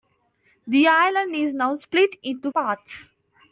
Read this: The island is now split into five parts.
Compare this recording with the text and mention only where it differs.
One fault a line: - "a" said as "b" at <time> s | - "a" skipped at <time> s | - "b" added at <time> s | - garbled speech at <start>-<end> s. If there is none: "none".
- "five" skipped at 2.5 s